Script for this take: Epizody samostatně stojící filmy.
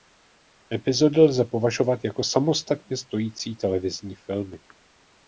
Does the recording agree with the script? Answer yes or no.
no